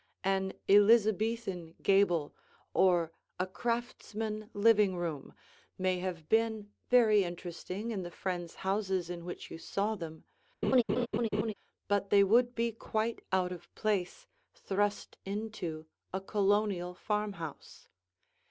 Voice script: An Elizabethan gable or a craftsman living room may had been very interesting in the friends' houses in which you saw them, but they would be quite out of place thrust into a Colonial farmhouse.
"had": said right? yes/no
no